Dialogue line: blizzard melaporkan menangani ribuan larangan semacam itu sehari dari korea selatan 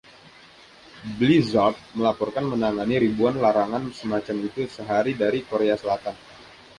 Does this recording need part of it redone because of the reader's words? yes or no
no